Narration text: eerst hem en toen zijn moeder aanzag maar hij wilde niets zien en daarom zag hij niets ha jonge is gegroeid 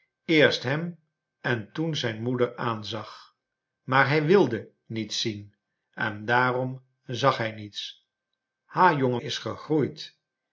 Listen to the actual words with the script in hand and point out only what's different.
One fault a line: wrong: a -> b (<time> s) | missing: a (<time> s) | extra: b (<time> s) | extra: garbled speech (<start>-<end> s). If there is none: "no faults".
no faults